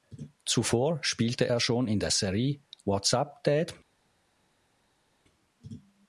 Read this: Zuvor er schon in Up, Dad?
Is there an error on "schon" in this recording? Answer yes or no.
no